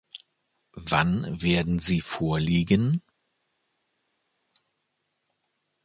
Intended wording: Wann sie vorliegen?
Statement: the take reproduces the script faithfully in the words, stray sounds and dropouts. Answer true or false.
false